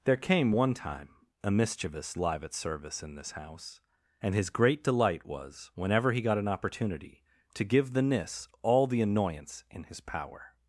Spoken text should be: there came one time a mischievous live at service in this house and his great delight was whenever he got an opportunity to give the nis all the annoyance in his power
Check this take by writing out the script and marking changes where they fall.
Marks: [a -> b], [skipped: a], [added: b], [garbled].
there came one time a mischievous live at service in this house and his great delight was whenever he got an opportunity to give the nis all the annoyance in his power